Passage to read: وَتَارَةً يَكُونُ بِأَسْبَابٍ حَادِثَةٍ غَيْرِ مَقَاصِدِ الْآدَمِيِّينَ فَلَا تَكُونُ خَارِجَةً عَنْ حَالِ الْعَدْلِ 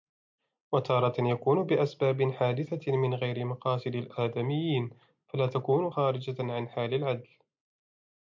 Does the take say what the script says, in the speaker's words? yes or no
no